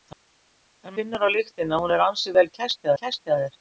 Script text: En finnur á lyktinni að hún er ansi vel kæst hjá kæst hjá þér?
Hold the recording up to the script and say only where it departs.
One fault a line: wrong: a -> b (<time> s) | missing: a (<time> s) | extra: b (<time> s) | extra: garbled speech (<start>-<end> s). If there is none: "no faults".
no faults